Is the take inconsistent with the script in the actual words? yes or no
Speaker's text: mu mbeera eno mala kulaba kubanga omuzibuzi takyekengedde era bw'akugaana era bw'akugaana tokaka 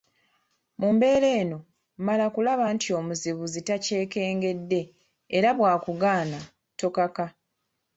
yes